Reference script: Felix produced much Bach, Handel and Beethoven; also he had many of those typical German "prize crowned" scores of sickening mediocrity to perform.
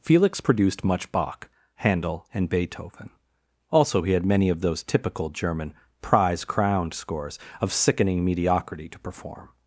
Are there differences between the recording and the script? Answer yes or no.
no